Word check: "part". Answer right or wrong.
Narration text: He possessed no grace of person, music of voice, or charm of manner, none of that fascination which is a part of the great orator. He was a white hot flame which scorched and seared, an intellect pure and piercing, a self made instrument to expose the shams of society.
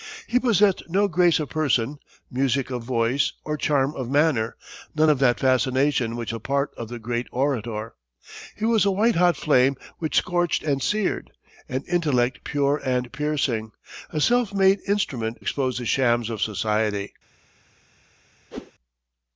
right